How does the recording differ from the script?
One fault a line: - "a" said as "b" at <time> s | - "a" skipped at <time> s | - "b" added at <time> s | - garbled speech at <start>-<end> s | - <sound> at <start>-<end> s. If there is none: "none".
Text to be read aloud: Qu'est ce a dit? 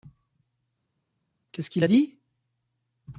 - "qu'il" added at 1.7 s